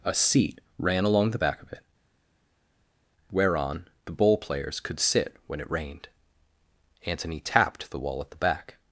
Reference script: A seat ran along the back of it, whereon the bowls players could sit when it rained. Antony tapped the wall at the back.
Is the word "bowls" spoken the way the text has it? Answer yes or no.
no